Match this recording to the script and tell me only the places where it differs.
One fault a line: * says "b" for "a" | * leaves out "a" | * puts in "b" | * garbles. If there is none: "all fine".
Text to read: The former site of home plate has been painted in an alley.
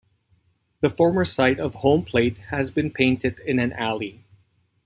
all fine